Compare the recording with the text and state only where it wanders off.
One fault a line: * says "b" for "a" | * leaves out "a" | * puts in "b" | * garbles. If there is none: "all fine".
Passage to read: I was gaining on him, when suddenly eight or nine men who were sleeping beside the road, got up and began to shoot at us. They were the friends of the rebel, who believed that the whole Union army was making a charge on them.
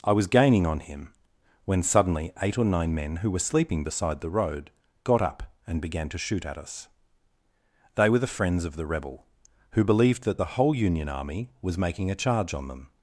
all fine